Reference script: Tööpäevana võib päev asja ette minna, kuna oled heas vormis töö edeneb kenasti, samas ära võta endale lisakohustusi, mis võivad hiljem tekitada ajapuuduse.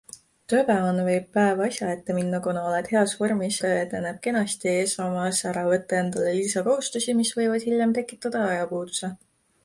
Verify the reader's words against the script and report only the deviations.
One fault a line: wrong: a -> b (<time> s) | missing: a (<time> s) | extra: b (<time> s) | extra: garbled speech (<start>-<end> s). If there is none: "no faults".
no faults